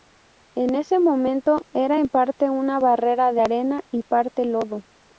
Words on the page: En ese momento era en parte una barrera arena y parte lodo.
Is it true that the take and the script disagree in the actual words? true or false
true